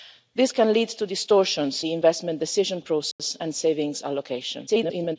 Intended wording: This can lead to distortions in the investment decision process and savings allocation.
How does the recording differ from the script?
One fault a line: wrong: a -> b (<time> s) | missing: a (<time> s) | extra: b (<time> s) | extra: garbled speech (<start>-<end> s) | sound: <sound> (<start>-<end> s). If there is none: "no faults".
missing: in (1.8 s)
sound: dropout (3.1-3.2 s)
extra: garbled speech (4.7-5.2 s)